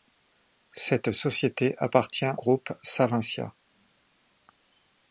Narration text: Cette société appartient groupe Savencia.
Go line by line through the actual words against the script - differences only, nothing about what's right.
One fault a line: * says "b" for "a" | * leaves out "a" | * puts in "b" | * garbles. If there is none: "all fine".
all fine